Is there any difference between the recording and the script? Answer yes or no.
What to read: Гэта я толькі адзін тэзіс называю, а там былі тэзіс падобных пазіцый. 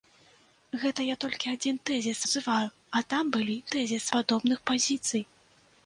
no